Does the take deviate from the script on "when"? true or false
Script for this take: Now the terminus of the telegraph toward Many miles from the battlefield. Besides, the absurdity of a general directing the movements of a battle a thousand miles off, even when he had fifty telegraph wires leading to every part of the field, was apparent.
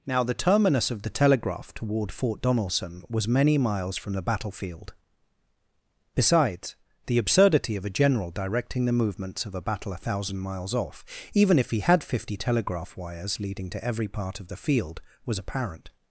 true